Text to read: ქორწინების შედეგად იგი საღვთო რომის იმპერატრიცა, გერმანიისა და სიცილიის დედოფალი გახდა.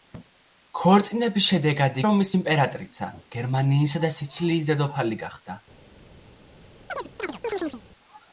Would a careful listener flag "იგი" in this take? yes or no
yes